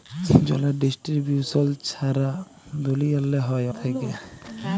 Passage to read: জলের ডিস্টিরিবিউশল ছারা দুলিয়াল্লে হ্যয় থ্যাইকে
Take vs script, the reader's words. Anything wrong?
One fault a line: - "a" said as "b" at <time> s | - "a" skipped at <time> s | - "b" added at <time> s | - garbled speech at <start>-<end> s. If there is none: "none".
none